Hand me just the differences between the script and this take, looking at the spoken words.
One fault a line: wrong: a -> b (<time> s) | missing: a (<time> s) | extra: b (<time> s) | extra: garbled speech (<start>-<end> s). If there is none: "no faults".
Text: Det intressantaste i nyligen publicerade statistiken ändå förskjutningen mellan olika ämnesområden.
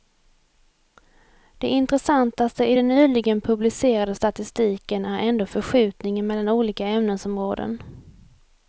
extra: den (2.7 s)
extra: är (5.0 s)